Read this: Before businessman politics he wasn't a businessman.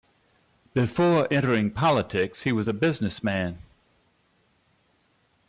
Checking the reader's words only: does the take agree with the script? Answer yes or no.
no